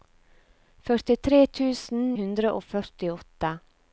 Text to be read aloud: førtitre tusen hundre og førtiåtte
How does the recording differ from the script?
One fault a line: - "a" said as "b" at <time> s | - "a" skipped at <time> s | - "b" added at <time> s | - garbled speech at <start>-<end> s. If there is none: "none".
none